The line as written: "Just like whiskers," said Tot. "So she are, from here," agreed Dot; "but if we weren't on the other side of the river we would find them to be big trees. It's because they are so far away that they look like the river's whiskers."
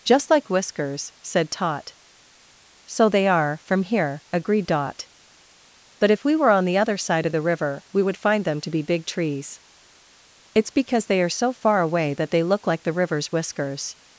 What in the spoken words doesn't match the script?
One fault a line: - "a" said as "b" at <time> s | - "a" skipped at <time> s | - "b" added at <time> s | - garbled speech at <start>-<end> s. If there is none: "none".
- "she" said as "they" at 3.1 s
- "weren't" said as "were" at 6.4 s